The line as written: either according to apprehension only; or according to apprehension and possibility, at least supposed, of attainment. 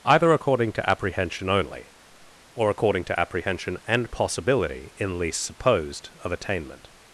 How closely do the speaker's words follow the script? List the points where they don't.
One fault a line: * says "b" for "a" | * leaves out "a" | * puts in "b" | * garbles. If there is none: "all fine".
* says "in" for "at"